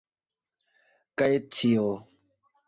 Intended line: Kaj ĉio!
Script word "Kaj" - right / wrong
right